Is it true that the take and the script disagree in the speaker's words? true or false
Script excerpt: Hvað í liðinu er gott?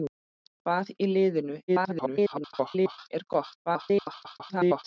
true